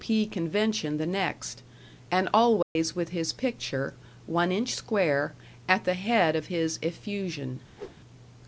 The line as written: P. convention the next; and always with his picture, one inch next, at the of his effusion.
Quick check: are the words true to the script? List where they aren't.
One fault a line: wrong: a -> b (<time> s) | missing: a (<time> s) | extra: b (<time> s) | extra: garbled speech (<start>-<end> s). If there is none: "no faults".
wrong: next -> square (4.7 s)
extra: head (5.9 s)